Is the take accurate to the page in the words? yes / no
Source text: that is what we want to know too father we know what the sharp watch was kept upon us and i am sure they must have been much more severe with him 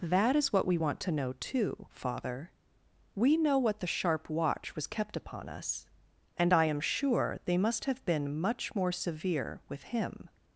yes